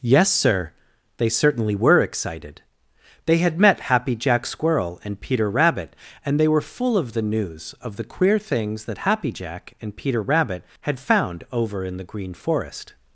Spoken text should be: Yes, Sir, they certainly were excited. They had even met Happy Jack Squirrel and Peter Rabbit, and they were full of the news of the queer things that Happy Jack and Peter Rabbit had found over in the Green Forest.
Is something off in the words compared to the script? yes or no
yes